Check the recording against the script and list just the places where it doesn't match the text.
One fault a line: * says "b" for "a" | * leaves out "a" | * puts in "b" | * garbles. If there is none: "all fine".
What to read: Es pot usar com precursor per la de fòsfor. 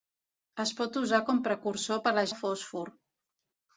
all fine